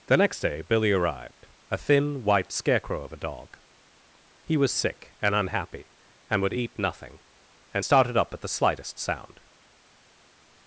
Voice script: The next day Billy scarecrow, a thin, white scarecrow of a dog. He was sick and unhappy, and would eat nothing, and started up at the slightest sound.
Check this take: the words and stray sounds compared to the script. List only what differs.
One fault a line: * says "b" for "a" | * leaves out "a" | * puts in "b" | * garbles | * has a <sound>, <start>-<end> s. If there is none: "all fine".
* says "arrived" for "scarecrow"